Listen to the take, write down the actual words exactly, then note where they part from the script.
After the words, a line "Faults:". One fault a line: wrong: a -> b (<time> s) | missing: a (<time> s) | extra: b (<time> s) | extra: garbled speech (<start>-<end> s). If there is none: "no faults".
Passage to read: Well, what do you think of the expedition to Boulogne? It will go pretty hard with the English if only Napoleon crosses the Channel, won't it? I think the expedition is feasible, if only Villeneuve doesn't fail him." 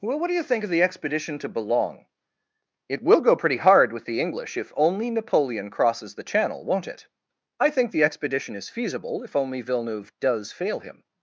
Well, what do you think of the expedition to Boulogne? It will go pretty hard with the English if only Napoleon crosses the Channel, won't it? I think the expedition is feasible, if only Villeneuve does fail him."
Faults:
wrong: doesn't -> does (10.2 s)